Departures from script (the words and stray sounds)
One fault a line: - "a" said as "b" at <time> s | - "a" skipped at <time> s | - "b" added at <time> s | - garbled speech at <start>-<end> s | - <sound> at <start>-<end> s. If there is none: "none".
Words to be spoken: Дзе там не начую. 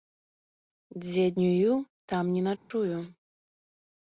- "днюю" added at 1.4 s
- dropout at 2.6-2.7 s